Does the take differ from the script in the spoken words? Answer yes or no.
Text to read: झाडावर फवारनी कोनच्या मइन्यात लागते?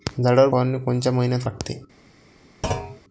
no